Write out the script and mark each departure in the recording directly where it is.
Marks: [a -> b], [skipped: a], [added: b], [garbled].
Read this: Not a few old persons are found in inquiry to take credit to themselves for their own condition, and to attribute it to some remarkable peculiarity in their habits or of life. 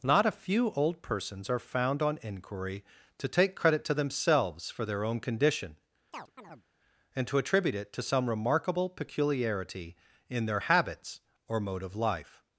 Not a few old persons are found [in -> on] inquiry to take credit to themselves for their own condition, and to attribute it to some remarkable peculiarity in their habits or [added: mode] of life.